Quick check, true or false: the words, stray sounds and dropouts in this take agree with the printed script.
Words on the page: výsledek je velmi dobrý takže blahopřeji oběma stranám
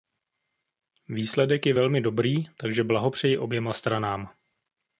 true